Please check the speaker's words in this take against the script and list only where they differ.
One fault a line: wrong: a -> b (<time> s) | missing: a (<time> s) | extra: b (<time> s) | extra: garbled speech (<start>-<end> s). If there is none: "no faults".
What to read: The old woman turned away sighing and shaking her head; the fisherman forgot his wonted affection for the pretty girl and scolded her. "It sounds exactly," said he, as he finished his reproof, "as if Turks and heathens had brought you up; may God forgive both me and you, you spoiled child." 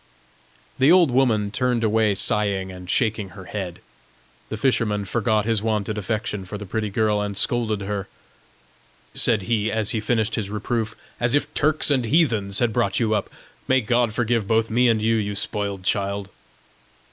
missing: It sounds exactly (8.1 s)